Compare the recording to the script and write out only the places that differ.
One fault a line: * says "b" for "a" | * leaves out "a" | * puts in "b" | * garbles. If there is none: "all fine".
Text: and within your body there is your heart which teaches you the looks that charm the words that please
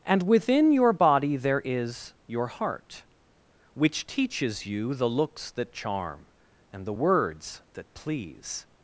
* puts in "and"